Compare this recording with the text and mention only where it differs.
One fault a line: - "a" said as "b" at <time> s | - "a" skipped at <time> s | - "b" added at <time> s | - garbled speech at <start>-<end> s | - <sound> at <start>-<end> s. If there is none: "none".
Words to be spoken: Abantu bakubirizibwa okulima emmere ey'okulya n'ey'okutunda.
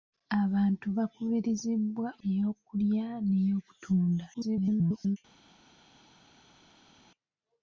- "okulima emmere" skipped at 2.1 s
- garbled speech at 4.3-5.2 s